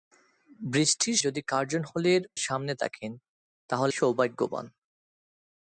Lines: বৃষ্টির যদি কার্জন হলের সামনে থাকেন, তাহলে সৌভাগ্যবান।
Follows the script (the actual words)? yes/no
yes